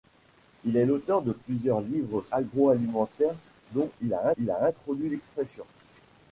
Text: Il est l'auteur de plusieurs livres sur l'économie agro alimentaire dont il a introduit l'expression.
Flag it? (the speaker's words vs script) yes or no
yes